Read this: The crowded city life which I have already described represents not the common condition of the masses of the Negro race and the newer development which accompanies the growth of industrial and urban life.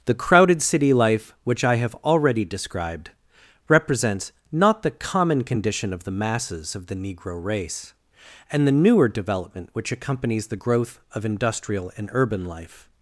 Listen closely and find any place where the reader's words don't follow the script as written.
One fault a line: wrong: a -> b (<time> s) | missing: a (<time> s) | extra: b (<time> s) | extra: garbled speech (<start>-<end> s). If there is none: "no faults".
no faults